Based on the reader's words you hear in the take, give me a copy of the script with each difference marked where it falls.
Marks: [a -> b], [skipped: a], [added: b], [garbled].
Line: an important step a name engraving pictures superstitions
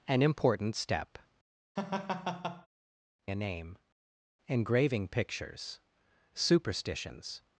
an important step a name engraving pictures superstitions